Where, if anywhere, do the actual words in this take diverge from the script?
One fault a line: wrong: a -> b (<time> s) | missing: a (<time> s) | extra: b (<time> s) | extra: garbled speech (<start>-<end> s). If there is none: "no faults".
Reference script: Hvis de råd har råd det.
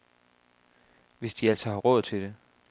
wrong: råd -> altså (1.5 s)
extra: til (2.0 s)